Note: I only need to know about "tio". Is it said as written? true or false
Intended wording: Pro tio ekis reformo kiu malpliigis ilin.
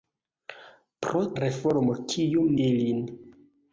false